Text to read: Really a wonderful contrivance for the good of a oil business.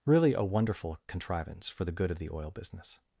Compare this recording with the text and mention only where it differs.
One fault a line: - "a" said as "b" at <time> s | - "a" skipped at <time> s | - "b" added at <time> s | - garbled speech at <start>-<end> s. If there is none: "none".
- "a" said as "the" at 2.2 s